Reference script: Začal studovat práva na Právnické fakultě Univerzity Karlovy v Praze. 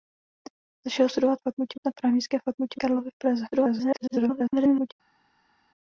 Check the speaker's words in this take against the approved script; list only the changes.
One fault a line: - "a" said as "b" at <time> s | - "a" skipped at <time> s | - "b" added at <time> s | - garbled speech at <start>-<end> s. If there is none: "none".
- "práva" said as "fakultě" at 1.4 s
- "Univerzity" skipped at 2.8 s
- garbled speech at 3.5-4.9 s